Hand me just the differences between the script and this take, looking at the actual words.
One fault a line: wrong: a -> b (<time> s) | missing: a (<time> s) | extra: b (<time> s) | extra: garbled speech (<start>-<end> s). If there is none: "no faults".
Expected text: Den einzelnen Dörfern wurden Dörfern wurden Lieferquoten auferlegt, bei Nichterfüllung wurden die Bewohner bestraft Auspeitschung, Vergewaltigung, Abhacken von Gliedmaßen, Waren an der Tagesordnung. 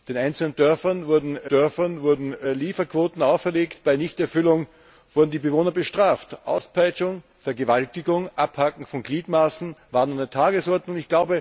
no faults